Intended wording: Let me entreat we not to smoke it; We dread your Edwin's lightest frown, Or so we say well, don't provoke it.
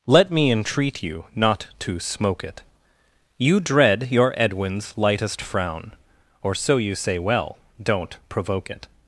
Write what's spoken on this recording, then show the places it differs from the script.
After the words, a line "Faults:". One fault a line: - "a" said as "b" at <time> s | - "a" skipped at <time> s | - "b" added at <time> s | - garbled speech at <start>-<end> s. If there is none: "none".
Let me entreat you not to smoke it; You dread your Edwin's lightest frown, Or so you say well, don't provoke it.
Faults:
- "we" said as "you" at 1.0 s
- "We" said as "You" at 3.4 s
- "we" said as "you" at 6.8 s